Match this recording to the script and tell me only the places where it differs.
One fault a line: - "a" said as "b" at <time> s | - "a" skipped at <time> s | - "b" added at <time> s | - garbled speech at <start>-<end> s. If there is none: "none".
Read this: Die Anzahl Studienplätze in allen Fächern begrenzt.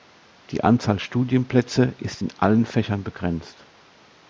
- "ist" added at 2.0 s